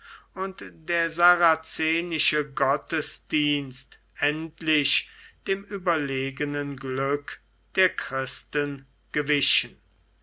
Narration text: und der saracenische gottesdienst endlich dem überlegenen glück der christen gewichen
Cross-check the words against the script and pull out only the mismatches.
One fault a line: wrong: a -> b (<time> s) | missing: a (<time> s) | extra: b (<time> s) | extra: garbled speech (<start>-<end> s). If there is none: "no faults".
no faults